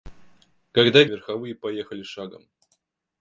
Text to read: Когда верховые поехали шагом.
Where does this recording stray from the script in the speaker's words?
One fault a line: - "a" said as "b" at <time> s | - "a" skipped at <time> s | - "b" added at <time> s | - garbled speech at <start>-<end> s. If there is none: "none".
none